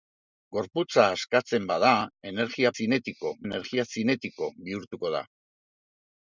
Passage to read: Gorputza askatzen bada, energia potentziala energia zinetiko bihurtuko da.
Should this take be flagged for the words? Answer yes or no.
yes